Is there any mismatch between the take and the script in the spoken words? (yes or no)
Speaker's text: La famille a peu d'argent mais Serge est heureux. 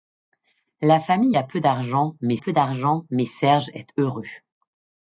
yes